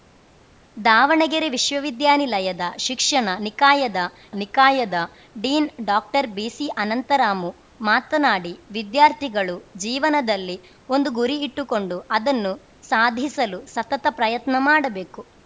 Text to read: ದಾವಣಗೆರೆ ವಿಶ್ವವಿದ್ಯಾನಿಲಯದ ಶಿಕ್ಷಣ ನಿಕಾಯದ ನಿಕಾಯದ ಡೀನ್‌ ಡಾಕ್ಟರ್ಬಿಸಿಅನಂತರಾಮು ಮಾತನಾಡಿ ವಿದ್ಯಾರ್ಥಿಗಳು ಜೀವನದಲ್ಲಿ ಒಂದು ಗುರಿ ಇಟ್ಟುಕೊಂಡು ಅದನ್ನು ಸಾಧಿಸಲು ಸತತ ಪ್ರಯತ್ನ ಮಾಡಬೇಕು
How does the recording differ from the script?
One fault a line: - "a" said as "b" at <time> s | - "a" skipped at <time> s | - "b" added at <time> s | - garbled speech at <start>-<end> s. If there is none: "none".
none